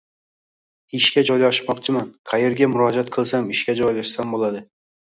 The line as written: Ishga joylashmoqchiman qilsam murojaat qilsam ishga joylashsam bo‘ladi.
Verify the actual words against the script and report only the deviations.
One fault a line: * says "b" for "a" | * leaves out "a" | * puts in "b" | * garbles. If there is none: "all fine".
* says "qayerga" for "qilsam"